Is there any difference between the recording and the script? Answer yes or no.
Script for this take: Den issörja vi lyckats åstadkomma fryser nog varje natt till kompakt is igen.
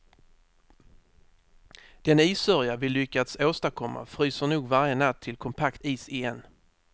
no